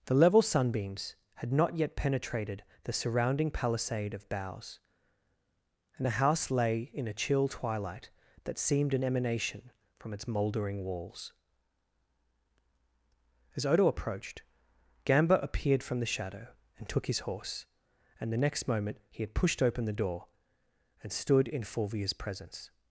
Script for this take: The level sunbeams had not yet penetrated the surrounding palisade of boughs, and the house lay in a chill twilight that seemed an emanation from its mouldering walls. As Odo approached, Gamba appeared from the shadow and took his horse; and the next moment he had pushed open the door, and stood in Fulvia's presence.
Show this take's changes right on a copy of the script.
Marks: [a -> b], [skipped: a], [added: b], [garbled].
The level sunbeams had not yet penetrated the surrounding palisade of boughs, and the house lay in a chill twilight that seemed an emanation from its mouldering walls. As Odo approached, Gamba appeared from the shadow and took his horse; and the next moment he had pushed open the door, and stood in Fulvia's presence.